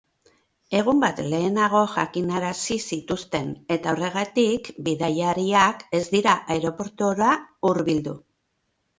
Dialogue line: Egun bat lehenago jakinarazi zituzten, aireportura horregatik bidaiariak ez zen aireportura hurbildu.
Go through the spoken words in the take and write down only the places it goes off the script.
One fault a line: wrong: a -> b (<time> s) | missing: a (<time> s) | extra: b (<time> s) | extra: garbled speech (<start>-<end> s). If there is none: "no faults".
wrong: aireportura -> eta (3.8 s)
wrong: zen -> dira (6.2 s)